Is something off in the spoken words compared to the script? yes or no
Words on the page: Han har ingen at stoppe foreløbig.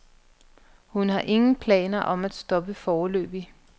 yes